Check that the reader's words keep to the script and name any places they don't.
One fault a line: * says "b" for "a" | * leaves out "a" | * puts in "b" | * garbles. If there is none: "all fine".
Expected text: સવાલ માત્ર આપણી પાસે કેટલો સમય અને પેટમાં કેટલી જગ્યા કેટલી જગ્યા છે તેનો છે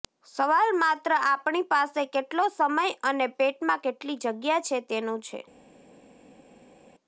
* leaves out "કેટલી જગ્યા"